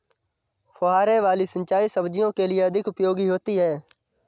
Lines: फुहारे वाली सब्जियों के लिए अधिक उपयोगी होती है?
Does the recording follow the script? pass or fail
fail